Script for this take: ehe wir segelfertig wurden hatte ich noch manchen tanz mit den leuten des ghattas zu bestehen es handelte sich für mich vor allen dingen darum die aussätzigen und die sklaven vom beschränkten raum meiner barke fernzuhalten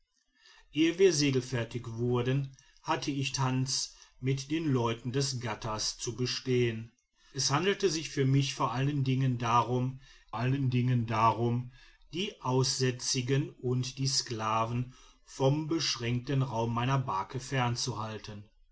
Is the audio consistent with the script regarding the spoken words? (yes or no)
no